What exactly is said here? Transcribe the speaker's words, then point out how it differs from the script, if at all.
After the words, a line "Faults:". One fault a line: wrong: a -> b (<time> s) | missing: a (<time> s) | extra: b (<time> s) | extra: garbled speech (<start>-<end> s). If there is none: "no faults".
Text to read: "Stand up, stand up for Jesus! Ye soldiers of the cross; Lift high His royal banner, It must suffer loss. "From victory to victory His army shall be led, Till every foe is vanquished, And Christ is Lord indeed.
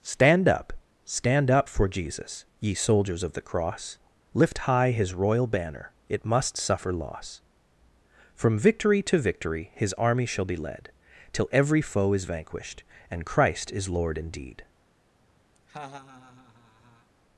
"Stand up, stand up for Jesus! Ye soldiers of the cross; Lift high His royal banner, It must suffer loss. "From victory to victory His army shall be led, Till every foe is vanquished, And Christ is Lord indeed.
Faults:
no faults